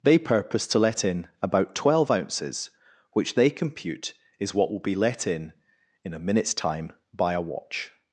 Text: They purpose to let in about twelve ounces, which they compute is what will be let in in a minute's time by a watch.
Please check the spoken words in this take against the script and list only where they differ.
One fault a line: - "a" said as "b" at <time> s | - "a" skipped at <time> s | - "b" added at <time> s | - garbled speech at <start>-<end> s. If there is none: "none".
none